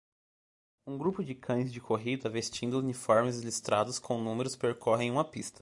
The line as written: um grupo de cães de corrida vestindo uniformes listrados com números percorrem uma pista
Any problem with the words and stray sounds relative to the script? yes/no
no